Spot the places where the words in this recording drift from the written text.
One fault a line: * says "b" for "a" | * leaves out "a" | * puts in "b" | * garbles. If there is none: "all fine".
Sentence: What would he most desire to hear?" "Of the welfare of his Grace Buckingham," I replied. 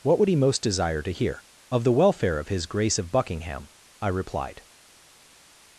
* puts in "of"